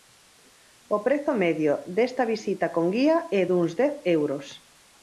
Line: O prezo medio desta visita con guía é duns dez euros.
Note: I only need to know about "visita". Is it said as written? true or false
true